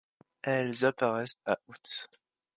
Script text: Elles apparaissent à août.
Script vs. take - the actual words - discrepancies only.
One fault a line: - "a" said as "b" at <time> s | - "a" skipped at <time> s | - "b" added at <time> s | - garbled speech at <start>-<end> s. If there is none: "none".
none